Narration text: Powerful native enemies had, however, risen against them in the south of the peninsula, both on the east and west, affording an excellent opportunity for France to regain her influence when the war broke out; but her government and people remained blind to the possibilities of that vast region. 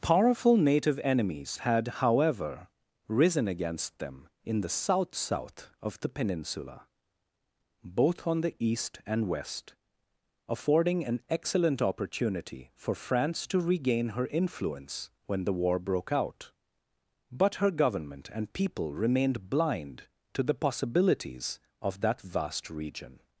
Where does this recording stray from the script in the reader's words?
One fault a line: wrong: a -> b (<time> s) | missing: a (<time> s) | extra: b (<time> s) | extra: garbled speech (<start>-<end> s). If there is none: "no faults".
extra: south (5.1 s)